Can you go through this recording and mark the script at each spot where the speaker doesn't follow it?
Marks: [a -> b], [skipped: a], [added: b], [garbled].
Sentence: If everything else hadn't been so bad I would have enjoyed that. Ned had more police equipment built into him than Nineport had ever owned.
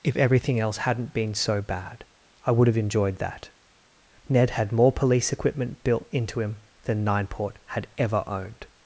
If everything else hadn't been so bad I would have enjoyed that. Ned had more police equipment built into him than Nineport had ever owned.